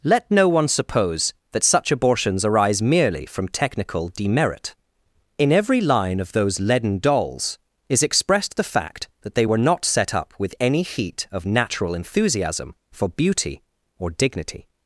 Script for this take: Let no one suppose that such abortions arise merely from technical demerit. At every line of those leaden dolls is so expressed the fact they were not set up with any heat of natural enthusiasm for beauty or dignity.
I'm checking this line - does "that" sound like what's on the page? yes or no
yes